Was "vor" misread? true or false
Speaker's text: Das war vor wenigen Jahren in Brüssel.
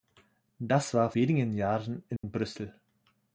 true